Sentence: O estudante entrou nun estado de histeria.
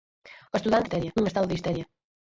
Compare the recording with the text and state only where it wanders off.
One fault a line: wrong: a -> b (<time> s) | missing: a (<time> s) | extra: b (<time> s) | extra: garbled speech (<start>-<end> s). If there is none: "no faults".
wrong: entrou -> histeria (0.8 s)